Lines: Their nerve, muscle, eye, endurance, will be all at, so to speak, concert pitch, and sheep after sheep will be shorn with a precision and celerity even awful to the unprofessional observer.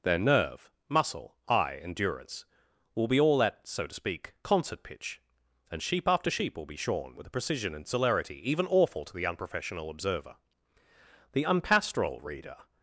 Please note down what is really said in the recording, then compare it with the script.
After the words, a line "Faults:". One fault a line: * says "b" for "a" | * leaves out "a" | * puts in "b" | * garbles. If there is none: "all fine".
Their nerve, muscle, eye, endurance, will be all at, so to speak, concert pitch, and sheep after sheep will be shorn with a precision and celerity even awful to the unprofessional observer. The unpastoral reader
Faults:
* puts in "The unpastoral reader"